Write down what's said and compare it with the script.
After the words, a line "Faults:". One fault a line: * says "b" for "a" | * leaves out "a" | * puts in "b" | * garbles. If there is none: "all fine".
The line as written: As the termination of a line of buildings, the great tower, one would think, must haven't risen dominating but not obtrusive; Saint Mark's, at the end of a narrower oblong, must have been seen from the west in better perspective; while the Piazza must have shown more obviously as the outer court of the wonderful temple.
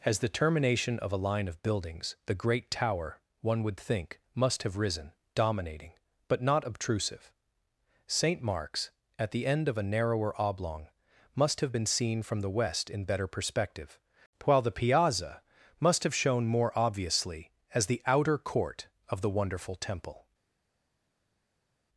As the termination of a line of buildings, the great tower, one would think, must have risen dominating but not obtrusive; Saint Mark's, at the end of a narrower oblong, must have been seen from the west in better perspective; while the Piazza must have shown more obviously as the outer court of the wonderful temple.
Faults:
* says "have" for "haven't"